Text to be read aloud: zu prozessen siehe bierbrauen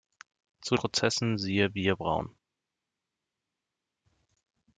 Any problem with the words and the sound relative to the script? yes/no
no